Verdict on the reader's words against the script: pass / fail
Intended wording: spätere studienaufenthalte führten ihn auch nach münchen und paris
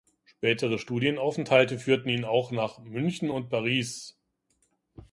pass